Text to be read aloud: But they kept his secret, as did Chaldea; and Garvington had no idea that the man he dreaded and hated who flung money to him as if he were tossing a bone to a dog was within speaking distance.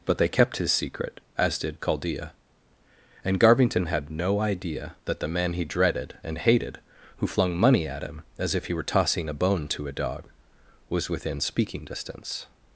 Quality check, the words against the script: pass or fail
fail